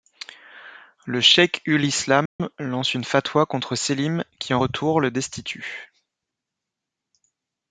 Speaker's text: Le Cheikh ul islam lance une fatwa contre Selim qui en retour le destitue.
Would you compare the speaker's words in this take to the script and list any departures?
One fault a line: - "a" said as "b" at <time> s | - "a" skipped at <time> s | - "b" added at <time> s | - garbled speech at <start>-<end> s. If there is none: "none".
none